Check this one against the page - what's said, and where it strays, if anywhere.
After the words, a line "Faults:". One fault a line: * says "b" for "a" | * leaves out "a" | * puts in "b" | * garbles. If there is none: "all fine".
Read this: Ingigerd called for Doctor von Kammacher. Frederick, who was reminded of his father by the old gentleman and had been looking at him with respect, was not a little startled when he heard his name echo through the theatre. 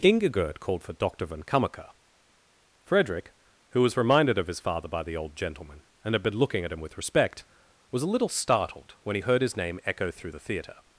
Ingigerd called for Doctor von Kammacher. Frederick, who was reminded of his father by the old gentleman and had been looking at him with respect, was a little startled when he heard his name echo through the theatre.
Faults:
* leaves out "not"